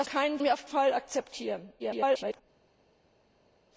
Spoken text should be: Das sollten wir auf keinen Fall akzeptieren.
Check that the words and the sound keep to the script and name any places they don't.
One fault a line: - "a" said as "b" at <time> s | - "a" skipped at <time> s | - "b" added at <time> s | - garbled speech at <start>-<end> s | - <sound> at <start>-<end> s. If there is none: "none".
- "sollten" said as "keinen" at 0.0 s
- "keinen" skipped at 0.7 s
- garbled speech at 1.8-2.4 s